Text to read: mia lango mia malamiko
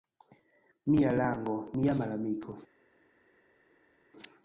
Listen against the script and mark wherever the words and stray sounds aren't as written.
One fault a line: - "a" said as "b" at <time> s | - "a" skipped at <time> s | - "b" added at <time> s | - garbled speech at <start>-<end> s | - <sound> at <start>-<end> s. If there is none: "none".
none